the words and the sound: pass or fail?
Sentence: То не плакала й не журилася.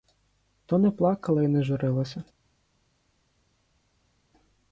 pass